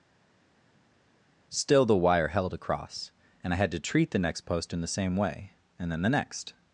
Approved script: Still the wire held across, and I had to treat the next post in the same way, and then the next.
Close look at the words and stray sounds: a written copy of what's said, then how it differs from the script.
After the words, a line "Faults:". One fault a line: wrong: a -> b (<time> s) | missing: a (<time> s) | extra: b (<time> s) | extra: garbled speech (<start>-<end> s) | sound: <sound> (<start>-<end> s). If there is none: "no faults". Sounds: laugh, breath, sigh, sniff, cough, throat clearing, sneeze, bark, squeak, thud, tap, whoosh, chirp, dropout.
Still the wire held across, and I had to treat the next post in the same way, and then the next.
Faults:
no faults